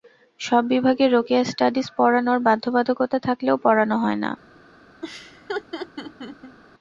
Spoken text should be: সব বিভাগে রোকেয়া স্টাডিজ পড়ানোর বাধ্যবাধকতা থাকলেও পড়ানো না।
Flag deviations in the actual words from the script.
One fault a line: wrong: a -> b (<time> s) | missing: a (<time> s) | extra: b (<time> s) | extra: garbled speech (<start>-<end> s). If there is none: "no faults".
extra: হয় (4.0 s)